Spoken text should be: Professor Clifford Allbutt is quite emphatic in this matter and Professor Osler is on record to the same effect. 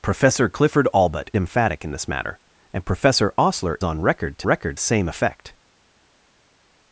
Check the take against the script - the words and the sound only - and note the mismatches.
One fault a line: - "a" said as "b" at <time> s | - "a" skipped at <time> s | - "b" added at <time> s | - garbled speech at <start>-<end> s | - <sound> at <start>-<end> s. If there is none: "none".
- "is quite" skipped at 1.3 s
- "is" skipped at 3.8 s
- "the" said as "record" at 4.4 s